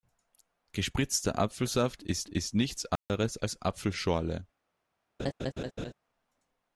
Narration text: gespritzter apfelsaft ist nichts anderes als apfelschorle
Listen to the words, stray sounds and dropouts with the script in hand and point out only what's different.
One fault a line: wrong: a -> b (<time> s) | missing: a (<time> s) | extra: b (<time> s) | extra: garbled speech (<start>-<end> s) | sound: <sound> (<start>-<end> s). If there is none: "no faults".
extra: ist (2.3 s)
sound: dropout (3.0-3.1 s)
sound: laugh (5.2-5.9 s)